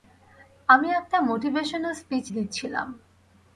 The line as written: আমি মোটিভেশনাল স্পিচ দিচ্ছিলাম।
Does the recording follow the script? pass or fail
fail